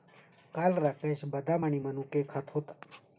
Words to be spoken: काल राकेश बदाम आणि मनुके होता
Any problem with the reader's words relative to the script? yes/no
yes